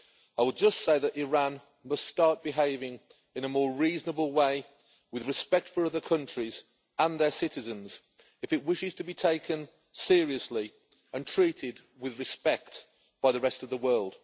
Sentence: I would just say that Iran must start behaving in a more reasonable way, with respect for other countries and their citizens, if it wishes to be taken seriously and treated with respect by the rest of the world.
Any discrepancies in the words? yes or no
no